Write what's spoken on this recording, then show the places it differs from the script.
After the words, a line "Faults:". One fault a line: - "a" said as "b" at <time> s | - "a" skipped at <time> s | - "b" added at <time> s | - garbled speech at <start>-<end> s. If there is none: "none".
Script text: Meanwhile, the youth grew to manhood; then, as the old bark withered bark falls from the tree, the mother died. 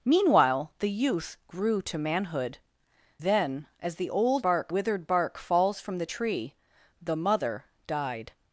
Meanwhile, the youth grew to manhood; then, as the old bark withered bark falls from the tree, the mother died.
Faults:
none